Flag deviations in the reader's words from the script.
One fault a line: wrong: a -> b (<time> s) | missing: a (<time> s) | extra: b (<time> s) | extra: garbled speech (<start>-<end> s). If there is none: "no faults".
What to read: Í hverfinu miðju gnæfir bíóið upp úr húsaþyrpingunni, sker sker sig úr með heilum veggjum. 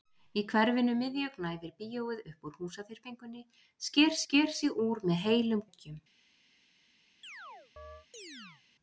no faults